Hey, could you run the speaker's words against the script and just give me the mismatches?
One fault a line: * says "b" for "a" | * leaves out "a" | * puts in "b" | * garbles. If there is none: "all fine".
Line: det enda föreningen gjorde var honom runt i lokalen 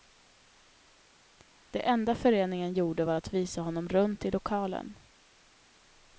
* puts in "att visa"